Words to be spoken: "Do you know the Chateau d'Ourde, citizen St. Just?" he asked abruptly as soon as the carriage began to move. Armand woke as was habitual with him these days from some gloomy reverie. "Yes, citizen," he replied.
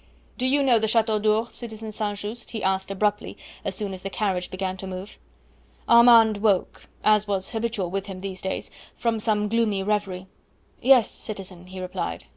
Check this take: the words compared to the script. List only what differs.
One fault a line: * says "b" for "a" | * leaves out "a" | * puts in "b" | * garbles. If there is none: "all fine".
all fine